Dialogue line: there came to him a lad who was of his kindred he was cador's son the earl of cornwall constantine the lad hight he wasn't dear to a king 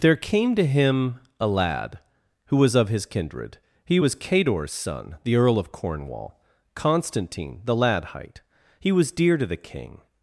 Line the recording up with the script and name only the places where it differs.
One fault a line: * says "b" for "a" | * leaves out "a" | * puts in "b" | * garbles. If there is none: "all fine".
* says "was" for "wasn't"
* says "the" for "a"